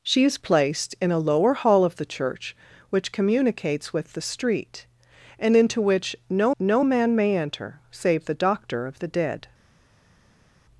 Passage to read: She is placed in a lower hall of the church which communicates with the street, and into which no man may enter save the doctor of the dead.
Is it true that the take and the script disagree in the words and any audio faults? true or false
true